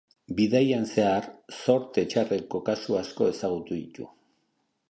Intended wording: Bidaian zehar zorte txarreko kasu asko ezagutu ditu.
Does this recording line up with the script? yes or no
yes